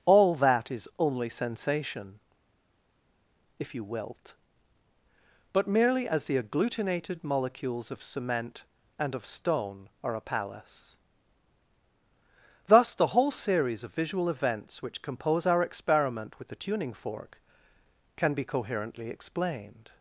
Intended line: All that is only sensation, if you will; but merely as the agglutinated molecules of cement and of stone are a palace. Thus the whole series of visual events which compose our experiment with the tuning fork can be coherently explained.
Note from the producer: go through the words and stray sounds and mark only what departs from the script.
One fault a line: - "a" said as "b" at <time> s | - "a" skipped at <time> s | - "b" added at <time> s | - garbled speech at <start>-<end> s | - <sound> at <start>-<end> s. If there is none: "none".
- "will" said as "wilt" at 3.8 s